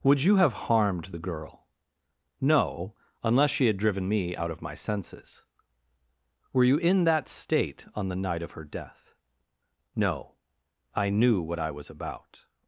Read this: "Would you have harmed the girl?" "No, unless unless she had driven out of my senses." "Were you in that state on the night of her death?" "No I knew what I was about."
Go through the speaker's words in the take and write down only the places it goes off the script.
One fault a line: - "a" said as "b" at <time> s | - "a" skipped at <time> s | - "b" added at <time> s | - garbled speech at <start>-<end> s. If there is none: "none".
- "unless" skipped at 3.5 s
- "me" added at 4.1 s